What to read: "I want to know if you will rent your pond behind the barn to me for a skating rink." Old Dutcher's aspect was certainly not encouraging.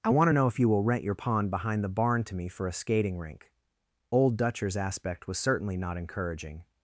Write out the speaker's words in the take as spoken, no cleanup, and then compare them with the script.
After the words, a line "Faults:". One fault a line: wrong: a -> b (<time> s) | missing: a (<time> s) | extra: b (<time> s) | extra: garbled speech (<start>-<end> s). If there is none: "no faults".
"I want to know if you will rent your pond behind the barn to me for a skating rink." Old Dutcher's aspect was certainly not encouraging.
Faults:
no faults